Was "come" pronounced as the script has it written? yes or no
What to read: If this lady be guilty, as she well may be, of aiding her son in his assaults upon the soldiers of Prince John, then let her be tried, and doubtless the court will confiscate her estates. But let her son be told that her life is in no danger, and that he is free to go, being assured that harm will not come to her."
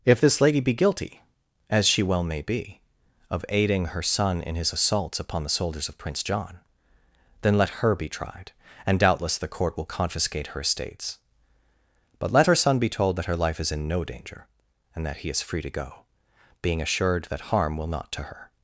no